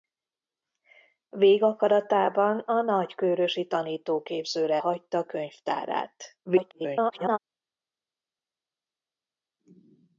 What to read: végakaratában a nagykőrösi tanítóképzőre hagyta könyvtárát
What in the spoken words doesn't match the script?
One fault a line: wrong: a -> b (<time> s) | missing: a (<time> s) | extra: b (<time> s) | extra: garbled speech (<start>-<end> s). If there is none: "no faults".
extra: garbled speech (6.5-7.4 s)